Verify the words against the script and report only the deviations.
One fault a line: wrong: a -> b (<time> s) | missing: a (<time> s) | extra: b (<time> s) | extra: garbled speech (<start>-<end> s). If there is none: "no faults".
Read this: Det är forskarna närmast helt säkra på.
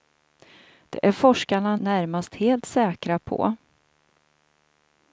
no faults